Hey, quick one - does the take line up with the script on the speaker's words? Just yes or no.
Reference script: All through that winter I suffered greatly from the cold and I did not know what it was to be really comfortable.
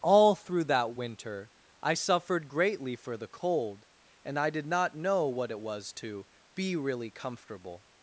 no